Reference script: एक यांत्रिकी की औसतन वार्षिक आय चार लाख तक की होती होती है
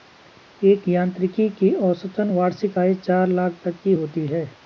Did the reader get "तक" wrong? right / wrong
right